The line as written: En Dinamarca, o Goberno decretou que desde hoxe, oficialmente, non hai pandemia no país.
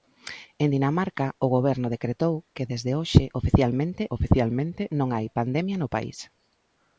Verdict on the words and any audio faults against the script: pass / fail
fail